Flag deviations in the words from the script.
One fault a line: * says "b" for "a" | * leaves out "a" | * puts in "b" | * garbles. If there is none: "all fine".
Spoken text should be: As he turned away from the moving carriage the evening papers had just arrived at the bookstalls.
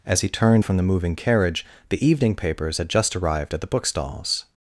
* leaves out "away"